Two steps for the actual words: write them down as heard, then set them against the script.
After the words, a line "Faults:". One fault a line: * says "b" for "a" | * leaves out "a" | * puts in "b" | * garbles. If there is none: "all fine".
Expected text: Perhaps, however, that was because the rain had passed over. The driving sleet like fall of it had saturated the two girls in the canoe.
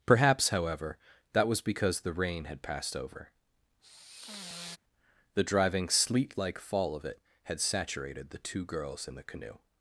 Perhaps, however, that was because the rain had passed over. The driving sleet like fall of it had saturated the two girls in the canoe.
Faults:
all fine